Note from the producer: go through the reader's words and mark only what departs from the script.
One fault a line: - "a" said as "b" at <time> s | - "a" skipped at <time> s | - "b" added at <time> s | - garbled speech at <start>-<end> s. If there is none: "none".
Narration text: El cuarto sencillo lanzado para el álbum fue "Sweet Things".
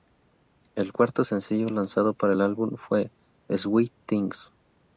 none